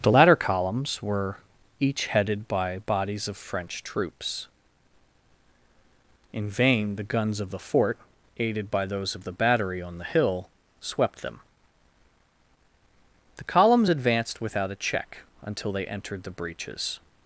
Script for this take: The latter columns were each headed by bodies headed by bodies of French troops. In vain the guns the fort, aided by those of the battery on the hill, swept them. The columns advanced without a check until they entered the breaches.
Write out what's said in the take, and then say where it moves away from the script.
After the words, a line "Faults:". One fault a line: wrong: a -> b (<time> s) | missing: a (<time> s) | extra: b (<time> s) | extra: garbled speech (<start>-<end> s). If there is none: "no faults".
The latter columns were each headed by bodies of French troops. In vain the guns of the fort, aided by those of the battery on the hill, swept them. The columns advanced without a check until they entered the breaches.
Faults:
missing: headed by bodies (3.3 s)
extra: of (7.4 s)